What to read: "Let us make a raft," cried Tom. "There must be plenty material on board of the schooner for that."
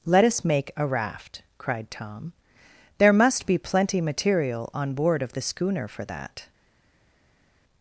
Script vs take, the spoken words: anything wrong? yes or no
no